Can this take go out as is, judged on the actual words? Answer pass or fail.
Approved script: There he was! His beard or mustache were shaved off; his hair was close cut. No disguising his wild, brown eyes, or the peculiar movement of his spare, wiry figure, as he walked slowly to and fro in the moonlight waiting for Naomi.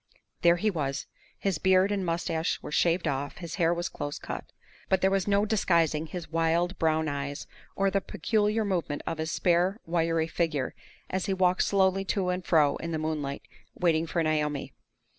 fail